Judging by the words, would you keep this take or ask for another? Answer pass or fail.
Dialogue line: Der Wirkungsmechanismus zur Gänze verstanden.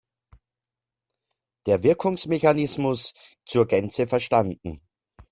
pass